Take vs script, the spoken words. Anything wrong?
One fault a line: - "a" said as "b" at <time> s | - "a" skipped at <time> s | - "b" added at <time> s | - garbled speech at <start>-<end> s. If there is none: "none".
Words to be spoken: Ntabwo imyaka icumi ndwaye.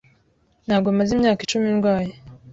- "maze" added at 1.0 s